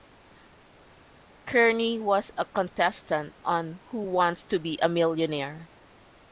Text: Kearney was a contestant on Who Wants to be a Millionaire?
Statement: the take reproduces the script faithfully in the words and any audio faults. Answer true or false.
true